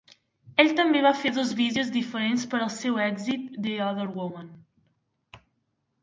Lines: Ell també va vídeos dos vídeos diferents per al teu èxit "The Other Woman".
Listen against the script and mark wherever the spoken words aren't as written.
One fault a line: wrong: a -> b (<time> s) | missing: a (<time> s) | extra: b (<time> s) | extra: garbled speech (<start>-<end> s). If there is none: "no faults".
wrong: vídeos -> fer (1.2 s)
wrong: teu -> seu (2.8 s)